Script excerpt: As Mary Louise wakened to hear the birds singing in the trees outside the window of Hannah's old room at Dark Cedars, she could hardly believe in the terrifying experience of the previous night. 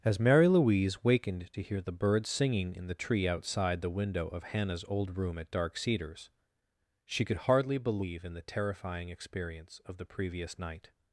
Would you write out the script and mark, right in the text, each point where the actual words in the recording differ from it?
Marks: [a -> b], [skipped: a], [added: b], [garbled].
As Mary Louise wakened to hear the birds singing in the [trees -> tree] outside the window of Hannah's old room at Dark Cedars, she could hardly believe in the terrifying experience of the previous night.